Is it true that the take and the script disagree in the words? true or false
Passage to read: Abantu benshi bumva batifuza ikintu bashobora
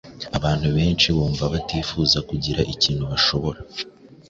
true